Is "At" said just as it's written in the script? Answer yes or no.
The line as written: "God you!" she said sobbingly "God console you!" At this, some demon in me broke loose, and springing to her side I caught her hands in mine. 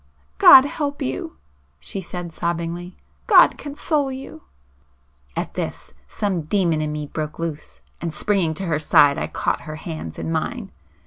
yes